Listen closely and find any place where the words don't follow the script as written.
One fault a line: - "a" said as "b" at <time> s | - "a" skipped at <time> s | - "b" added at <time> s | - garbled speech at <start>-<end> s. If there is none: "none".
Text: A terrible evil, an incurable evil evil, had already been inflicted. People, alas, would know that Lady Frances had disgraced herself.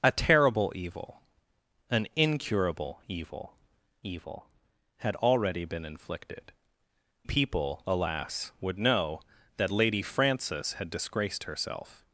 none